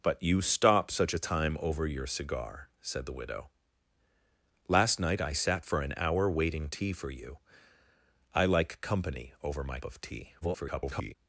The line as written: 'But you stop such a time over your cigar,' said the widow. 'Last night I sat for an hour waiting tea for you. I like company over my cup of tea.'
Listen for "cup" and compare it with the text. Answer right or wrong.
wrong